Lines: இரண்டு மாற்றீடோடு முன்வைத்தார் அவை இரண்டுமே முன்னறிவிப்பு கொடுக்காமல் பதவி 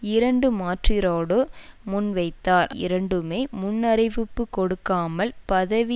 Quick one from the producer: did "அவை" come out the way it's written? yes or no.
no